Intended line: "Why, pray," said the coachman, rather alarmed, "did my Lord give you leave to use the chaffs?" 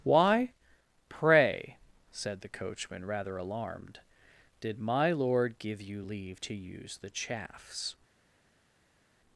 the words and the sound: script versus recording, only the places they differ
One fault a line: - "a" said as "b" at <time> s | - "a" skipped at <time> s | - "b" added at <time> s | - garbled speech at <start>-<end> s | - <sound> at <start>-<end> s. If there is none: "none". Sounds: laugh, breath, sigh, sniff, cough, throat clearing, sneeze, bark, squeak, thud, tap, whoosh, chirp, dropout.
none